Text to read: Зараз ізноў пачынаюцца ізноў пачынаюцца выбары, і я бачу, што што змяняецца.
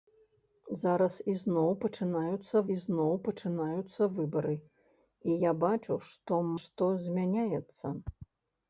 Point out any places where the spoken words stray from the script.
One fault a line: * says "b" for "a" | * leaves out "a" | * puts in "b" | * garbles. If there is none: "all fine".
all fine